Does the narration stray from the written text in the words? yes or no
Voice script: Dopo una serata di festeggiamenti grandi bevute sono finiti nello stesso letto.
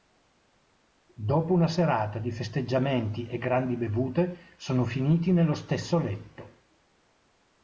yes